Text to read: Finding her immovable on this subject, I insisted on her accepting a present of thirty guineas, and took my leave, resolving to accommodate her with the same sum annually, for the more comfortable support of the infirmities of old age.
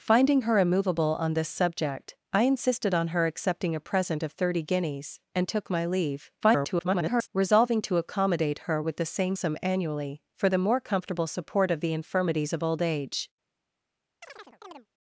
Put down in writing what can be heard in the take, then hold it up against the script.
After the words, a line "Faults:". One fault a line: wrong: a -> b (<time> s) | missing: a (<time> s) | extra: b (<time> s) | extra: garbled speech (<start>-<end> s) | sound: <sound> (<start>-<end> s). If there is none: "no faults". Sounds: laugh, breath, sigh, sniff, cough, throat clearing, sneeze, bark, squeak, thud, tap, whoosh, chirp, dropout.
Finding her immovable on this subject, I insisted on her accepting a present of thirty guineas, and took my leave, [garbled] resolving to accommodate her with the same sum annually, for the more comfortable support of the infirmities of old age.
Faults:
extra: garbled speech (6.4-7.3 s)
sound: chirp (14.2-14.9 s)